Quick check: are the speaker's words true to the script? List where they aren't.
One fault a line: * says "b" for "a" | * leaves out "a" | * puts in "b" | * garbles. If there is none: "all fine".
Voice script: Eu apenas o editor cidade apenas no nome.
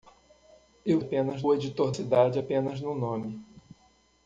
all fine